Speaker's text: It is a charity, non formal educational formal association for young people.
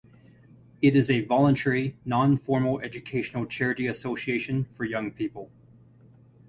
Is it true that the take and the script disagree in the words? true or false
true